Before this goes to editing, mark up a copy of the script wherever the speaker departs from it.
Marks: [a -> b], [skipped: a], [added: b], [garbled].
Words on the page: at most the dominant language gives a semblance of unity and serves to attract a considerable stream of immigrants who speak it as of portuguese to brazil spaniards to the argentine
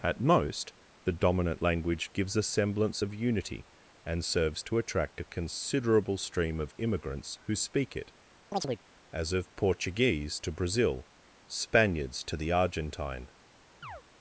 at most the dominant language gives a semblance of unity and serves to attract a considerable stream of immigrants who speak it as of portuguese to brazil spaniards to the argentine